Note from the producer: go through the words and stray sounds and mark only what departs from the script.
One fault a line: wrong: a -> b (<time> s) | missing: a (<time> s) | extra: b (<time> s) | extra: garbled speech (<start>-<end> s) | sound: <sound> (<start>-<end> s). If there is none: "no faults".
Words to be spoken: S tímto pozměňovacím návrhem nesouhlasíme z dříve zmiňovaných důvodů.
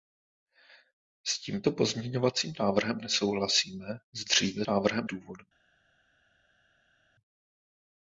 wrong: zmiňovaných -> návrhem (4.7 s)